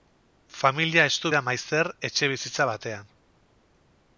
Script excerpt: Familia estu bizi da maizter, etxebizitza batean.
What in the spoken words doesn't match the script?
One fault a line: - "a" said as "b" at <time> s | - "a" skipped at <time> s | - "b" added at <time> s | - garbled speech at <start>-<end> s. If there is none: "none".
- "bizi" skipped at 1.3 s